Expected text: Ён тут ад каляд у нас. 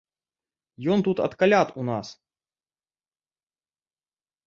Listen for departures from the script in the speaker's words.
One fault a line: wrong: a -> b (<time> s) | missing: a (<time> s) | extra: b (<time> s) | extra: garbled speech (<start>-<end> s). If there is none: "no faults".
no faults